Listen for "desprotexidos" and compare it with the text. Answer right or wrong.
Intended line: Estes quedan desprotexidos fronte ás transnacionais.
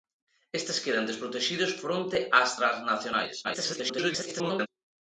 right